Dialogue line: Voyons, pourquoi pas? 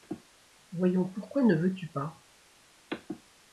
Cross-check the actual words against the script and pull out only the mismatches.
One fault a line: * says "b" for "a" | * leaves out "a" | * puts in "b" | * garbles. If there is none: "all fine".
* puts in "ne veux tu"